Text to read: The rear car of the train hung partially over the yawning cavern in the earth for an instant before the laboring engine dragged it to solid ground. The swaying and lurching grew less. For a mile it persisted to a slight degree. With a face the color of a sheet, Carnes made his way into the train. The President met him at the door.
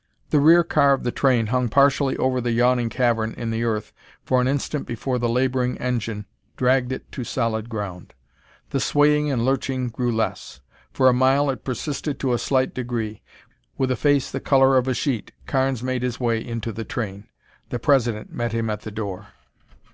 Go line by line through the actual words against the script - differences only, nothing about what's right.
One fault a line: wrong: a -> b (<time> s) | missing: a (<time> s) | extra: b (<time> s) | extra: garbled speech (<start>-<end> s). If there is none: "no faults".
no faults